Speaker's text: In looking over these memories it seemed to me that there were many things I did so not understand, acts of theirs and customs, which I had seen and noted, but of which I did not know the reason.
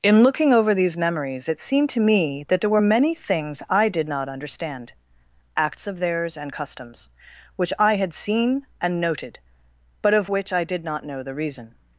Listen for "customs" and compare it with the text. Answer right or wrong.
right